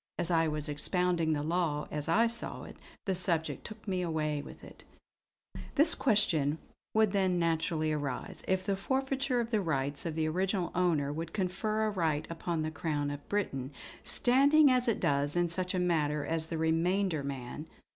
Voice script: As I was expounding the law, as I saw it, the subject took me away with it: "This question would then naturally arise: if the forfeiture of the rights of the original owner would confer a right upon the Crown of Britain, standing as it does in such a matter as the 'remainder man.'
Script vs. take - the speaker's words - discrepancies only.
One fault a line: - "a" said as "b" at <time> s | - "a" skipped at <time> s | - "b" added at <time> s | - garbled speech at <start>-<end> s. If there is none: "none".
none